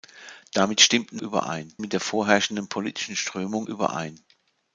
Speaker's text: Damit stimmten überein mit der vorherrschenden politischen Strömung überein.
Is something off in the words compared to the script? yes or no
no